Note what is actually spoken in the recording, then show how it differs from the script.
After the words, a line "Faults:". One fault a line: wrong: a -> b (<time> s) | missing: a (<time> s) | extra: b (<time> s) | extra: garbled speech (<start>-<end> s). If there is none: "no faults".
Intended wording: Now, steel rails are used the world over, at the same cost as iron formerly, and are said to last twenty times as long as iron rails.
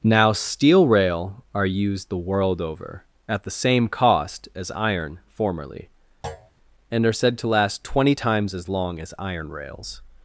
Now, steel rail are used the world over, at the same cost as iron formerly, and are said to last twenty times as long as iron rails.
Faults:
wrong: rails -> rail (0.9 s)